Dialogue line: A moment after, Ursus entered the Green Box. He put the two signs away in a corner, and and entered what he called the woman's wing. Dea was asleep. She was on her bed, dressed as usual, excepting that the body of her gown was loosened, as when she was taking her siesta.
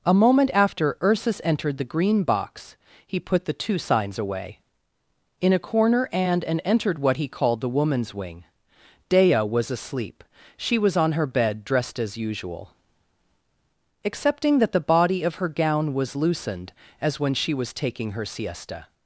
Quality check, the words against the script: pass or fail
pass